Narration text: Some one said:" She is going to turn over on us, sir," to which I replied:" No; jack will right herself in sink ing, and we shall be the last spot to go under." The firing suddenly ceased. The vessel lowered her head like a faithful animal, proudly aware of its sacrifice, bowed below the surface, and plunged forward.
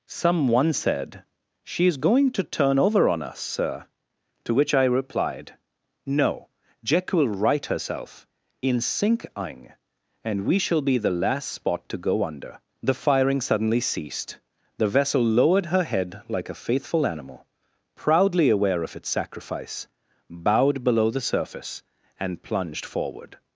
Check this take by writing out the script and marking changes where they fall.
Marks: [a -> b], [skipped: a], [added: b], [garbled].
Some one said:" She is going to turn over on us, sir," to which I replied:" No; jack will right herself in sink ing, and we shall be the last spot to go under." The firing suddenly ceased. The vessel lowered her head like a faithful animal, proudly aware of its sacrifice, bowed below the surface, and plunged forward.